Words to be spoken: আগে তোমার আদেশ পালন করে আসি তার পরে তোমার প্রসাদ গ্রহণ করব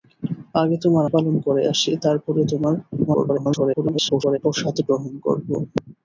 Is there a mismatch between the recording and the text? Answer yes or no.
yes